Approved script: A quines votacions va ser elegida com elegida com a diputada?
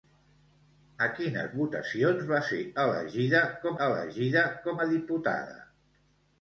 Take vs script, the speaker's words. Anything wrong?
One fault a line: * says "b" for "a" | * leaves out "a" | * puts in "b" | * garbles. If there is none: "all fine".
all fine